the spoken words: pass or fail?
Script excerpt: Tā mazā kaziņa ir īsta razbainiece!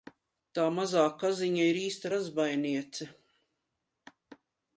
pass